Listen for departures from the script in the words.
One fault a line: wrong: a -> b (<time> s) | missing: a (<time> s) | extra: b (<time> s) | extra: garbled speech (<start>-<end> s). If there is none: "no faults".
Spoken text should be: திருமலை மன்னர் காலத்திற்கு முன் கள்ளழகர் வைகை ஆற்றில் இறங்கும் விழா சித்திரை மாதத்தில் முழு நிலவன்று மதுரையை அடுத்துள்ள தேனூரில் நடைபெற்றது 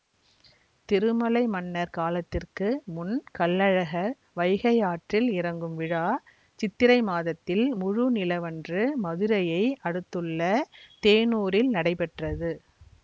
no faults